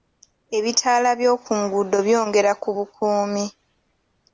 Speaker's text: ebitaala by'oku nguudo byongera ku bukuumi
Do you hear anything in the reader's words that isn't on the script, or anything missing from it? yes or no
no